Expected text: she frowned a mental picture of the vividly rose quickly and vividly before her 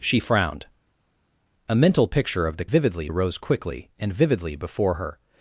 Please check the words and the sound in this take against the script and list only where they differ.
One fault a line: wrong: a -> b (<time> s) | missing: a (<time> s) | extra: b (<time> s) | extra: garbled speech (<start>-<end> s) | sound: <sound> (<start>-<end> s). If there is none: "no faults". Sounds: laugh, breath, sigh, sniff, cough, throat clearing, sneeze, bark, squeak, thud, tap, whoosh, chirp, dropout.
no faults